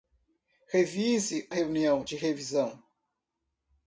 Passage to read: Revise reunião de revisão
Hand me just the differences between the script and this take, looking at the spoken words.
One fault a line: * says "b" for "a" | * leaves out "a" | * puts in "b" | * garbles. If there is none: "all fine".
all fine